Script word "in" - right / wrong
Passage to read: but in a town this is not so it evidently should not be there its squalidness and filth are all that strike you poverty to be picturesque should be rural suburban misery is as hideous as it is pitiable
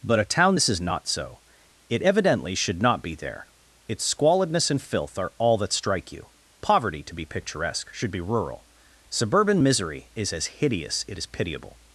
wrong